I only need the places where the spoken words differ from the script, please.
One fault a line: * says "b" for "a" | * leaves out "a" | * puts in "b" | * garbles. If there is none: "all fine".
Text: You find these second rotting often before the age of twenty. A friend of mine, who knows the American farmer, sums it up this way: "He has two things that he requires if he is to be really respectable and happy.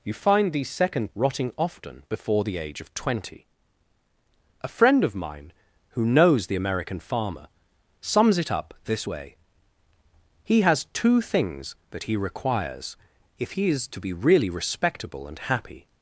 all fine